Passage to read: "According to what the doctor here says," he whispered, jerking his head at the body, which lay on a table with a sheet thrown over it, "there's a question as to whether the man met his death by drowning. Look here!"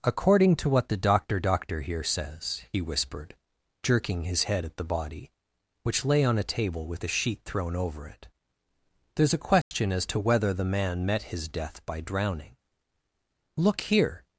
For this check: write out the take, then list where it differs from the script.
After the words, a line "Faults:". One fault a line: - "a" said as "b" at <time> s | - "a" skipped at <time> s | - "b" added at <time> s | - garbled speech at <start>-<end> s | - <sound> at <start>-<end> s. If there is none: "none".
"According to what the doctor doctor here says," he whispered, jerking his head at the body, which lay on a table with a sheet thrown over it, "there's a question as to whether the man met his death by drowning. Look here!"
Faults:
- "doctor" added at 1.4 s
- dropout at 9.6-9.7 s